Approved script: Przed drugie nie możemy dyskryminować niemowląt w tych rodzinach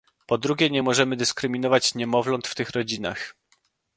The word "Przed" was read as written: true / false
false